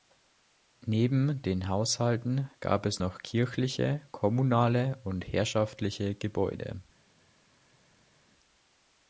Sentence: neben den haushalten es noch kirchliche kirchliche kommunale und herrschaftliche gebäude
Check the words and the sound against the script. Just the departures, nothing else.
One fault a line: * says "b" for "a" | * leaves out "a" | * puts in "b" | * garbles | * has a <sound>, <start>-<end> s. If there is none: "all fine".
* puts in "gab"
* leaves out "kirchliche"